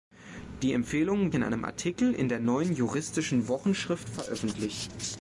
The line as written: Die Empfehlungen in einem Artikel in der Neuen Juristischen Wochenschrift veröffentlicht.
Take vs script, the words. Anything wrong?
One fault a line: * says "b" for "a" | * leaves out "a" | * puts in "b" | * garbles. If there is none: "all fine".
all fine